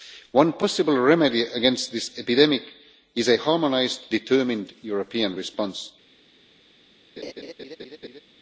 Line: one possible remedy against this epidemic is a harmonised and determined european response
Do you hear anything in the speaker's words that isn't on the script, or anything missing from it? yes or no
yes